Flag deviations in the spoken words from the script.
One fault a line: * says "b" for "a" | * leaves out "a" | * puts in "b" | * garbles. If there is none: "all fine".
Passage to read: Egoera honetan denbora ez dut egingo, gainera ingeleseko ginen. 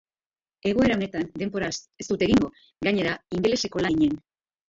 all fine